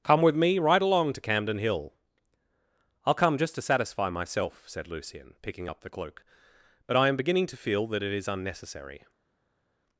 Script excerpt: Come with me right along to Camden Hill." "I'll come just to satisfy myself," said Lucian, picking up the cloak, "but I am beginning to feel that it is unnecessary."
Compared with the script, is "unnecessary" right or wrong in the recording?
right